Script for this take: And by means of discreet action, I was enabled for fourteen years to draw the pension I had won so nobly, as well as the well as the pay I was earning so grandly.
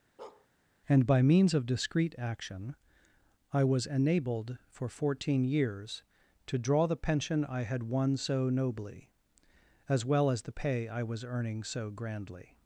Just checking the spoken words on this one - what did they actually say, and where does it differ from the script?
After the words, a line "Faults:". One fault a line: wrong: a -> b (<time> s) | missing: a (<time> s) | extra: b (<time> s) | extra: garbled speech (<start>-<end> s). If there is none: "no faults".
And by means of discreet action, I was enabled for fourteen years to draw the pension I had won so nobly, as well as the pay I was earning so grandly.
Faults:
missing: well as the (10.5 s)